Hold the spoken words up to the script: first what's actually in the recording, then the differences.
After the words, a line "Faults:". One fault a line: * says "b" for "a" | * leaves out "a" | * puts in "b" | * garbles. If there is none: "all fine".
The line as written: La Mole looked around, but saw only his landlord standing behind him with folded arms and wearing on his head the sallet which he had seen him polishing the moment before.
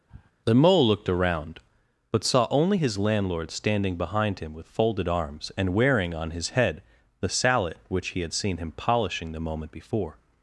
The Mole looked around, but saw only his landlord standing behind him with folded arms and wearing on his head the sallet which he had seen him polishing the moment before.
Faults:
* says "The" for "La"